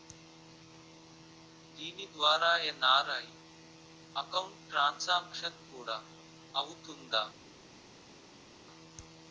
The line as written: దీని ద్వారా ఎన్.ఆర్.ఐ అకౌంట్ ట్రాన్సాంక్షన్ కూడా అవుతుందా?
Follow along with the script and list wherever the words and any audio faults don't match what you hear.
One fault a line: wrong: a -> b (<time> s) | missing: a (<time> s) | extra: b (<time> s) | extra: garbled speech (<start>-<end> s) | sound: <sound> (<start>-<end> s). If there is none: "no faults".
no faults